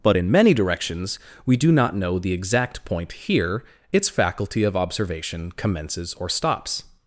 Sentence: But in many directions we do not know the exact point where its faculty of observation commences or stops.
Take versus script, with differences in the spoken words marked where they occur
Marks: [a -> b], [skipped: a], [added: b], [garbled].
But in many directions we do not know the exact point [where -> here] its faculty of observation commences or stops.